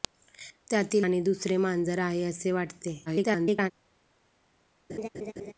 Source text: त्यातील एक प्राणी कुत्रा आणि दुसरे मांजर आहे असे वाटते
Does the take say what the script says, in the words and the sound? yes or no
no